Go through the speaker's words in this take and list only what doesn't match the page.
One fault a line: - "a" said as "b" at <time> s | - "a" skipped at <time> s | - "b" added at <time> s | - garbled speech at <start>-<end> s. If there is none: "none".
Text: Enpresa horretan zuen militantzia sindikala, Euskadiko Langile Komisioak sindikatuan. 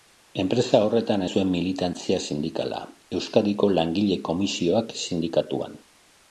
none